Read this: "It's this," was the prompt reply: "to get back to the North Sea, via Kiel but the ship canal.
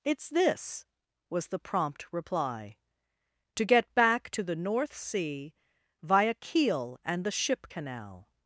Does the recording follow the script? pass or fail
fail